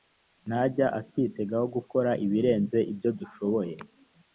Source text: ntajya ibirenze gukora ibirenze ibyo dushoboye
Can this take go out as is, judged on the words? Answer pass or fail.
fail